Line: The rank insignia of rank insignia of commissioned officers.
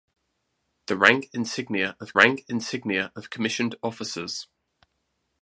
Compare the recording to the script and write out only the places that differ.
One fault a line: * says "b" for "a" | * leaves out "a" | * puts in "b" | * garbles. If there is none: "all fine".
all fine